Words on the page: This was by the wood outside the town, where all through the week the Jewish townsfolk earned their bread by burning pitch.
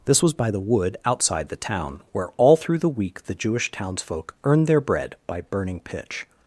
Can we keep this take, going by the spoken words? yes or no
yes